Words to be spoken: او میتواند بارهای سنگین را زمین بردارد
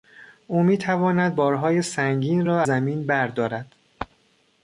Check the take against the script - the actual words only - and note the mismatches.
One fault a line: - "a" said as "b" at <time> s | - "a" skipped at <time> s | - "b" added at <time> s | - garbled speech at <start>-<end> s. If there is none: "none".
none